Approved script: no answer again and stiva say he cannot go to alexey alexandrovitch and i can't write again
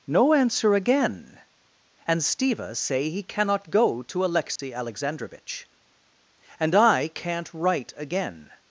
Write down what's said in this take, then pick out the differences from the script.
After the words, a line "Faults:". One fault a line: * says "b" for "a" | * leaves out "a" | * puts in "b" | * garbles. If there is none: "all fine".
no answer again and stiva say he cannot go to alexey alexandrovitch and i can't write again
Faults:
all fine